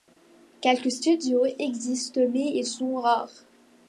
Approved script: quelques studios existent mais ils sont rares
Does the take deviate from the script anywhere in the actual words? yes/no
no